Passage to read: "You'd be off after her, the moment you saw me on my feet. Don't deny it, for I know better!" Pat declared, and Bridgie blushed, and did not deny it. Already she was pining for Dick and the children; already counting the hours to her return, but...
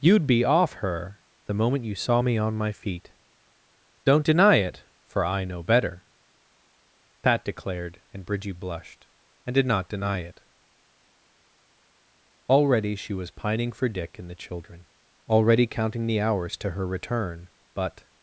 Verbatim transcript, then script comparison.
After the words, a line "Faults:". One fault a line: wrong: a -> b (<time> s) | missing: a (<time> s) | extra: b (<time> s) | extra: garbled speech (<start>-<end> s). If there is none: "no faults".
"You'd be off her, the moment you saw me on my feet. Don't deny it, for I know better!" Pat declared, and Bridgie blushed, and did not deny it. Already she was pining for Dick and the children; already counting the hours to her return, but...
Faults:
missing: after (0.7 s)